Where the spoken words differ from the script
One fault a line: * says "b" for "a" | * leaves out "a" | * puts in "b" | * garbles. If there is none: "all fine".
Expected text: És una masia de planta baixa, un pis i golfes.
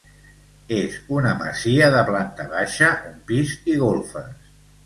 all fine